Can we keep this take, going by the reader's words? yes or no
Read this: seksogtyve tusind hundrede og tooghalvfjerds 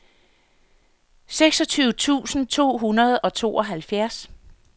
no